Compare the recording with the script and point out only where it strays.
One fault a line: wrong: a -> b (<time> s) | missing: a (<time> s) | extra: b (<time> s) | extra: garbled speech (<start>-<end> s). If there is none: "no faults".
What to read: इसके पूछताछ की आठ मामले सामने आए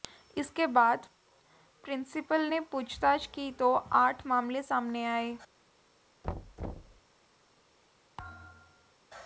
extra: बाद प्रिंसिपल ने (0.7 s)
extra: तो (3.5 s)